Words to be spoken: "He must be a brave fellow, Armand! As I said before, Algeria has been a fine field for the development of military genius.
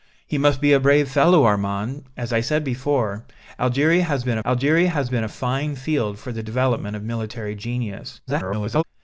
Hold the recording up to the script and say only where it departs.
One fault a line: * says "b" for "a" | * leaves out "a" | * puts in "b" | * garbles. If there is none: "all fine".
* puts in "Algeria has been"
* garbles